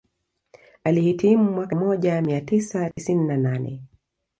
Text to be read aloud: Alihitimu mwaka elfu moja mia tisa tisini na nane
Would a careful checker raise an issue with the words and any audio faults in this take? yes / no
yes